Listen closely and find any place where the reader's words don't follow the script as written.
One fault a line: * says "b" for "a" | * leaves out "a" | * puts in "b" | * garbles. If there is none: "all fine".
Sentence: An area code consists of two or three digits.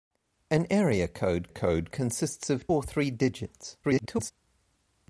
* puts in "code"
* leaves out "two"
* garbles